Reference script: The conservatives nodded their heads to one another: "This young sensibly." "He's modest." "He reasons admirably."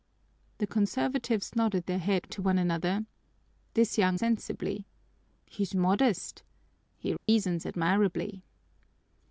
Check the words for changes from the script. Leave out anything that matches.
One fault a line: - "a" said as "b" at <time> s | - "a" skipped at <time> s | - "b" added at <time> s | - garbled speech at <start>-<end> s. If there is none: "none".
none